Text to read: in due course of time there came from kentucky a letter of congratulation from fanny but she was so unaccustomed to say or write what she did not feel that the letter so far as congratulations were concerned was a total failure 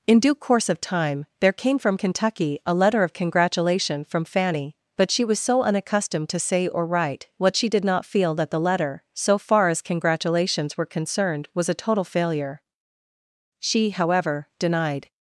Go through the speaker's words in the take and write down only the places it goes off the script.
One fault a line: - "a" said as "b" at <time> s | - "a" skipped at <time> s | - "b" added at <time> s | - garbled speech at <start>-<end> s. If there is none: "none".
- "she however denied" added at 13.6 s